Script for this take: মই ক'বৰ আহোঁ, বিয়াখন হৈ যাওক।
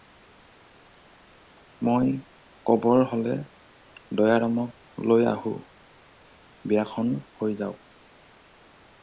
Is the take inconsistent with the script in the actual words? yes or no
yes